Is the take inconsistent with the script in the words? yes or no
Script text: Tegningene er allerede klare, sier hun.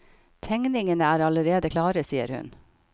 no